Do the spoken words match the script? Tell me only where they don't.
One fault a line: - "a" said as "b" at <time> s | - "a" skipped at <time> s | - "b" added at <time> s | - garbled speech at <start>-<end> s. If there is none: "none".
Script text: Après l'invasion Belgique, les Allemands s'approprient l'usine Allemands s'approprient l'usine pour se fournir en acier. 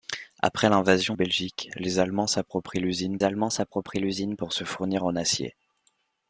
none